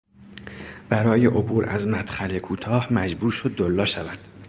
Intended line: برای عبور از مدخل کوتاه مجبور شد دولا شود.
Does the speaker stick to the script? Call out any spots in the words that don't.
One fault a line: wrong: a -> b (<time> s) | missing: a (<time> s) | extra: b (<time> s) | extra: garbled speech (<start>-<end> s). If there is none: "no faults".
no faults